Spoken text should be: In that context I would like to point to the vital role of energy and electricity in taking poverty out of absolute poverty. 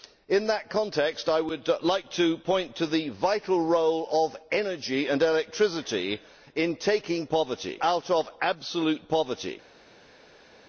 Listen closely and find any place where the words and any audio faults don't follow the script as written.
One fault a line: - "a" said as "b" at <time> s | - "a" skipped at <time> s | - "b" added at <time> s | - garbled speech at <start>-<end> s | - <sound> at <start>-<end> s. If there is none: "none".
none